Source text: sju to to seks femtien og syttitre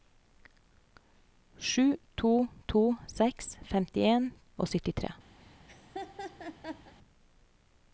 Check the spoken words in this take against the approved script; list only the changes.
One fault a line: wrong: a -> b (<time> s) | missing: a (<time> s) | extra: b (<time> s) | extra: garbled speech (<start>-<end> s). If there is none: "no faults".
no faults